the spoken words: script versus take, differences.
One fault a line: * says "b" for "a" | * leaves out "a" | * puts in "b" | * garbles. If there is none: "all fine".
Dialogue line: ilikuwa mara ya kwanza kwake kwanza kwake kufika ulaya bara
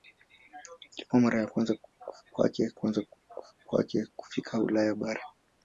all fine